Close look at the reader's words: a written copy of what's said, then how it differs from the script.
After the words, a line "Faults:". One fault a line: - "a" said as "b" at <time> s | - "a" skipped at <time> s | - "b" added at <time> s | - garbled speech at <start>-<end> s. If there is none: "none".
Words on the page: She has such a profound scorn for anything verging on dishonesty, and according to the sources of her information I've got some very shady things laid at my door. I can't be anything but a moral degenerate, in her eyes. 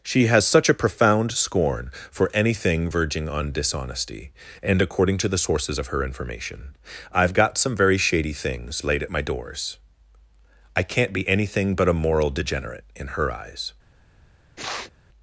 She has such a profound scorn for anything verging on dishonesty, and according to the sources of her information I've got some very shady things laid at my doors. I can't be anything but a moral degenerate, in her eyes.
Faults:
- "door" said as "doors" at 9.2 s